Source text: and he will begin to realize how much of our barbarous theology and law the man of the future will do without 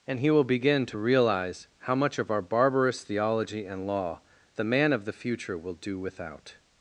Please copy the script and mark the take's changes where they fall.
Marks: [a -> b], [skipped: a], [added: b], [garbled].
and he will begin to realize how much of our barbarous theology and law the man of the future will do without